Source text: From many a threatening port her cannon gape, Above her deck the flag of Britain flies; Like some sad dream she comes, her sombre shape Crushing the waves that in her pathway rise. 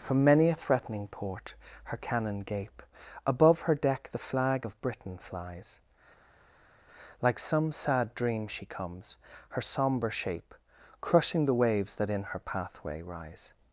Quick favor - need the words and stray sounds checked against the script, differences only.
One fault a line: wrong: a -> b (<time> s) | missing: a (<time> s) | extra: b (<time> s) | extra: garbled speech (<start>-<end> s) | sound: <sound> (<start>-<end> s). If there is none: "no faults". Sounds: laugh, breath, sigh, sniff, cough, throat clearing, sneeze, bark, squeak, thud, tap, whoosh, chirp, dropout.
no faults